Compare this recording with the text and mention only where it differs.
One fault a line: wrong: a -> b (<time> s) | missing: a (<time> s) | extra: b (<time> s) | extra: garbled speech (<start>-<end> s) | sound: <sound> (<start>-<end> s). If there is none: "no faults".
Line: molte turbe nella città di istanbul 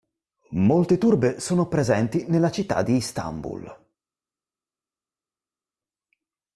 extra: sono presenti (1.4 s)